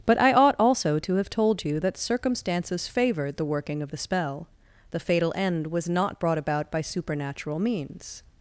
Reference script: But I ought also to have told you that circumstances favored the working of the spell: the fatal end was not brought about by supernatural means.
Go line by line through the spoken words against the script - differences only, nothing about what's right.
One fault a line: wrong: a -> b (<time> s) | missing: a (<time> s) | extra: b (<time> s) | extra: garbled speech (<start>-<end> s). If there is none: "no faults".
no faults